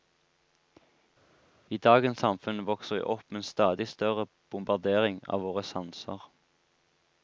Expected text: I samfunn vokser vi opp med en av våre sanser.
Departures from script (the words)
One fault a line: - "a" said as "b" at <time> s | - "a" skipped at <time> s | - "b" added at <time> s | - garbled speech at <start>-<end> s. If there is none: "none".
- "dagens" added at 1.9 s
- "stadig større bombardering" added at 3.5 s